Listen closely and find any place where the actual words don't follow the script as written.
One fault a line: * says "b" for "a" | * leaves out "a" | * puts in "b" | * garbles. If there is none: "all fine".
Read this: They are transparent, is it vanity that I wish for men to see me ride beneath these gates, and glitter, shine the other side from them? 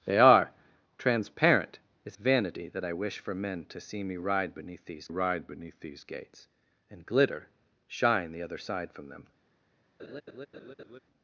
* leaves out "it"
* puts in "ride beneath these"